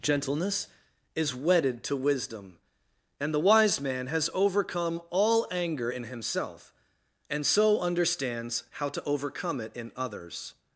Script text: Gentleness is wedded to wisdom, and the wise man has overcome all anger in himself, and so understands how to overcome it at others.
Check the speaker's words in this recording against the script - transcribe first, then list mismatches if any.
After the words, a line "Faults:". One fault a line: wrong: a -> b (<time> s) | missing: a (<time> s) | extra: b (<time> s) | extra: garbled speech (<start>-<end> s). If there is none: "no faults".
Gentleness is wedded to wisdom, and the wise man has overcome all anger in himself, and so understands how to overcome it in others.
Faults:
wrong: at -> in (9.7 s)